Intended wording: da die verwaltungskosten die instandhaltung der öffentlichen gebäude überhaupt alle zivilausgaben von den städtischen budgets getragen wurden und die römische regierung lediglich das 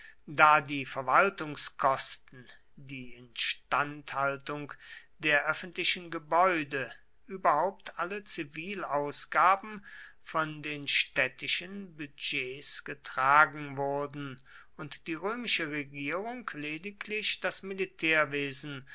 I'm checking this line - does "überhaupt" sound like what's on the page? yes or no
yes